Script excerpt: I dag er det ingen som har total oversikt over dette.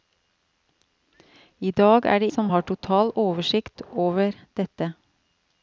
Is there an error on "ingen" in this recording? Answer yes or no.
yes